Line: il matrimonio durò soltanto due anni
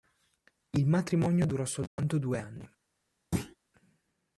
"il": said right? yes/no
yes